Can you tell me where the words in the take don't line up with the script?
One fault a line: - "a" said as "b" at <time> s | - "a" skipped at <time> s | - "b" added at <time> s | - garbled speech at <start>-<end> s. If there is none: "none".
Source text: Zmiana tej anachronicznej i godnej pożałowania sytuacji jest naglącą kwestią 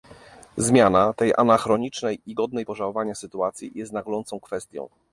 none